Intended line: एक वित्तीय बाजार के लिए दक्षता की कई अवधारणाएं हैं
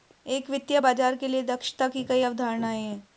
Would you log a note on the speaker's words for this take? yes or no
no